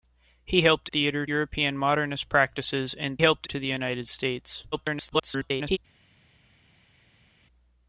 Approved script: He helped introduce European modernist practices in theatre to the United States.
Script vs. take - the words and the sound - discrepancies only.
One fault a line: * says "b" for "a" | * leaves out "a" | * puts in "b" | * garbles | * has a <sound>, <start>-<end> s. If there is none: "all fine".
* says "theatre" for "introduce"
* says "helped" for "theatre"
* garbles